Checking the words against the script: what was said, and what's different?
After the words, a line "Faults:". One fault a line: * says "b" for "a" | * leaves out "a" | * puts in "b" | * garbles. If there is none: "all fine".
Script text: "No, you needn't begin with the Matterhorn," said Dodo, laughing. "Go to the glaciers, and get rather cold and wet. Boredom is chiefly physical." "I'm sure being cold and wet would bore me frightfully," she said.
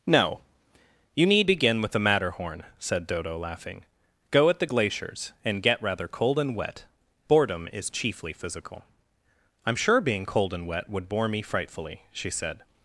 "No, you need begin with the Matterhorn," said Dodo, laughing. "Go at the glaciers, and get rather cold and wet. Boredom is chiefly physical." "I'm sure being cold and wet would bore me frightfully," she said.
Faults:
* says "need" for "needn't"
* says "at" for "to"